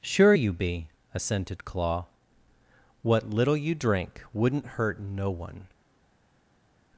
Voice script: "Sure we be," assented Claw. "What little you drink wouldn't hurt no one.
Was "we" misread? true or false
true